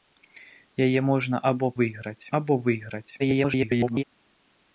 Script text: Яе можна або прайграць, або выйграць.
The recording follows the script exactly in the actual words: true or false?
false